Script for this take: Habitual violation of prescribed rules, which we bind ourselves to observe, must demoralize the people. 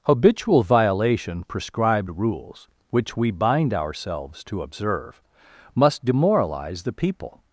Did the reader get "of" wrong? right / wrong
wrong